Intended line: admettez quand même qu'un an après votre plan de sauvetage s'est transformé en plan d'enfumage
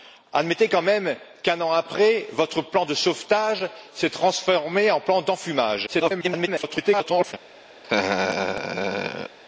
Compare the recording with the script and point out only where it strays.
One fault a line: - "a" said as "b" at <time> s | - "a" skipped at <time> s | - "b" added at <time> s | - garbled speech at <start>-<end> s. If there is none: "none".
- garbled speech at 5.9-7.3 s